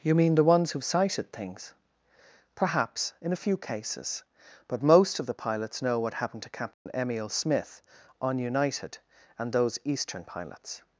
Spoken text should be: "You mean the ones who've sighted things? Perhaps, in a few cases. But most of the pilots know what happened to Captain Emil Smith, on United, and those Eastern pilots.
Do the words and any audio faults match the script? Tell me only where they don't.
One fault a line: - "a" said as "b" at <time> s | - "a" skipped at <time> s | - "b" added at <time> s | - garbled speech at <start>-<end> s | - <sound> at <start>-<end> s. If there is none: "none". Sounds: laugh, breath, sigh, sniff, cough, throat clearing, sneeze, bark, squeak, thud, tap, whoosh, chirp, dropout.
- dropout at 6.7-6.9 s